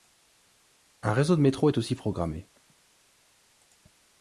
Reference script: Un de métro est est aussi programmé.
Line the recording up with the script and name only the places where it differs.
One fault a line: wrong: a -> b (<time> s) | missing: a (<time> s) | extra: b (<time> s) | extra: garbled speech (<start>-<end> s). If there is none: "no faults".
extra: réseau (1.1 s)
missing: est (1.8 s)